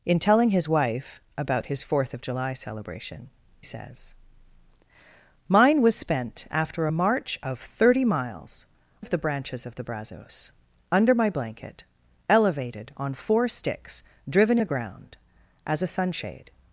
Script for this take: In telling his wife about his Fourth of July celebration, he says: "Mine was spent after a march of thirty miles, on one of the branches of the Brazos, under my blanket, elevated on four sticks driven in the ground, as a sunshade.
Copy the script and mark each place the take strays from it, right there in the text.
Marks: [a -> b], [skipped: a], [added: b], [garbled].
In telling his wife about his Fourth of July celebration, [skipped: he] says: "Mine was spent after a march of thirty miles, [skipped: on one] of the branches of the Brazos, under my blanket, elevated on four sticks driven [skipped: in] the ground, as a sunshade.